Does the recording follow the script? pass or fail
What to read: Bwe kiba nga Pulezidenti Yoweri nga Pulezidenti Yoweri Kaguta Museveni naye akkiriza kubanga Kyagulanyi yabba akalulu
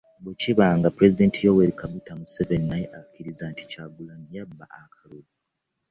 fail